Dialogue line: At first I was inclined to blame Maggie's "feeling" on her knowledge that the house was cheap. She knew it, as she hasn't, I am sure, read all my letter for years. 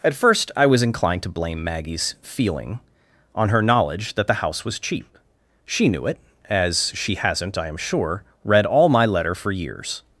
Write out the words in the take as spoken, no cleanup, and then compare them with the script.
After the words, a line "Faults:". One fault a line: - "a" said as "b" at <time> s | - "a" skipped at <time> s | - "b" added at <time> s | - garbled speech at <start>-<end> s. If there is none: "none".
At first I was inclined to blame Maggie's "feeling" on her knowledge that the house was cheap. She knew it, as she hasn't, I am sure, read all my letter for years.
Faults:
none